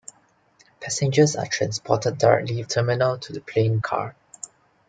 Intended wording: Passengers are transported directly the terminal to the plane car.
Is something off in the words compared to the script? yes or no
no